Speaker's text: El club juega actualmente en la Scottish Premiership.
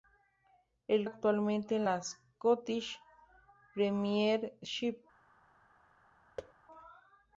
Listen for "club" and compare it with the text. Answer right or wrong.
wrong